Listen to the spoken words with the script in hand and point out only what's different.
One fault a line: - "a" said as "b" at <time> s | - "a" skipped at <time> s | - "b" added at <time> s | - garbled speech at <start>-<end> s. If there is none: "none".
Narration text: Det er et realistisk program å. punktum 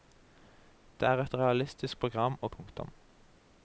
none